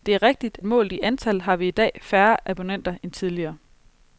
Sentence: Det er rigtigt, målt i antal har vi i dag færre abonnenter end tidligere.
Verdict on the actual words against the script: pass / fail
pass